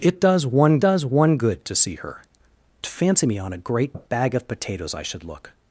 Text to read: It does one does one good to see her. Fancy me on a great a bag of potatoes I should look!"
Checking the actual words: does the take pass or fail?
pass